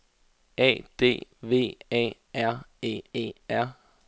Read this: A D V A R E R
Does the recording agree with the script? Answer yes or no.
no